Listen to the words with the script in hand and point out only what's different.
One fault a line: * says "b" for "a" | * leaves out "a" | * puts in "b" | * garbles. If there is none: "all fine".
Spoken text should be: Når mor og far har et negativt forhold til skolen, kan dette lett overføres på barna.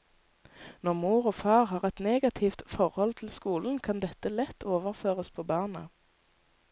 all fine